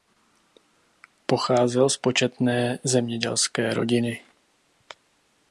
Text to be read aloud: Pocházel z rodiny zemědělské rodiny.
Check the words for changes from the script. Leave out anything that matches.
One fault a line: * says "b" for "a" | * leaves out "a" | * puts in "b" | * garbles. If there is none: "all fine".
* says "početné" for "rodiny"